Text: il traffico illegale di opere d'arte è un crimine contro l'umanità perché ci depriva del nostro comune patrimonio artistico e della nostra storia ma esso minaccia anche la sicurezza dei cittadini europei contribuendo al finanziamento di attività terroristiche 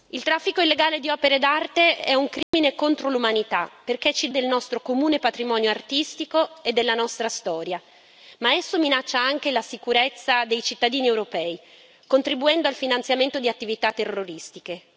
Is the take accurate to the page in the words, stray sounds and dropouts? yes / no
no